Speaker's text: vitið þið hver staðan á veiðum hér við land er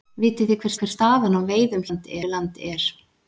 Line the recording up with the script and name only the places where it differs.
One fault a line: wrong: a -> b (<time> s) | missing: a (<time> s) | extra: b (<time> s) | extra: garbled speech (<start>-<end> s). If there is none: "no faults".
extra: hver (0.8 s)
wrong: hér -> land (1.9 s)